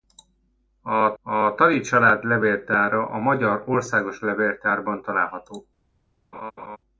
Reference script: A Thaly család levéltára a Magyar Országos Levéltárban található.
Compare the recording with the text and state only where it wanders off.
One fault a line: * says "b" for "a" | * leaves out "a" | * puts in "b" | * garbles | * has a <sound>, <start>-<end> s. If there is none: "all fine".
* puts in "a"
* has a laugh, 6.3-6.8 s